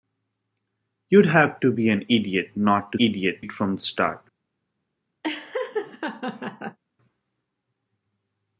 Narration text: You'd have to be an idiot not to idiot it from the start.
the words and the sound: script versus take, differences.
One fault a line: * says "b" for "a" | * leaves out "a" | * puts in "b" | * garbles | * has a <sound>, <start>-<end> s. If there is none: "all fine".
* has a laugh, 5.2-6.8 s